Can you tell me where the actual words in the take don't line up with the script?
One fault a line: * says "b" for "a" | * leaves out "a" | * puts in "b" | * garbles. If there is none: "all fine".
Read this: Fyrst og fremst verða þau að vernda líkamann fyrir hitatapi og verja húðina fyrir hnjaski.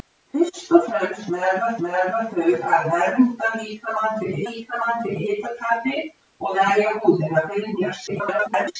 * puts in "verða"
* puts in "líkamann fyrir"
* garbles